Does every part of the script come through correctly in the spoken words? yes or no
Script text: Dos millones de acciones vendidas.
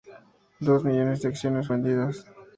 yes